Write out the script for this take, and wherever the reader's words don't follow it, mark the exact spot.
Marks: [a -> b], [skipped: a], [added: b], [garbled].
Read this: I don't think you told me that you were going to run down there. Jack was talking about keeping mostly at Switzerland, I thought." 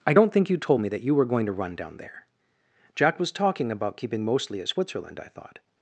I don't think you told me that you were going to run down there. Jack was talking about keeping mostly at Switzerland, I thought."